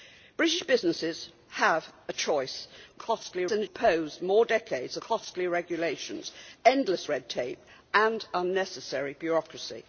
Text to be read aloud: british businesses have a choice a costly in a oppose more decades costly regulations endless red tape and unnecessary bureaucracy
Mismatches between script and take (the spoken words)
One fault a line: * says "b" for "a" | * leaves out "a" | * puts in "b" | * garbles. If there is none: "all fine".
all fine